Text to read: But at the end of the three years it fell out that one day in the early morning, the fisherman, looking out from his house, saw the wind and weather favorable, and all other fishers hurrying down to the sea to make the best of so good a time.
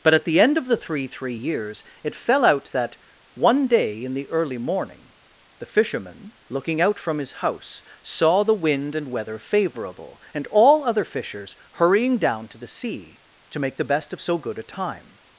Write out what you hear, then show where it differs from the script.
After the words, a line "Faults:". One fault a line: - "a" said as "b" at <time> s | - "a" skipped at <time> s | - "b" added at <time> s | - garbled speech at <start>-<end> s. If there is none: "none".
But at the end of the three three years it fell out that one day in the early morning, the fisherman, looking out from his house, saw the wind and weather favorable, and all other fishers hurrying down to the sea to make the best of so good a time.
Faults:
- "three" added at 1.1 s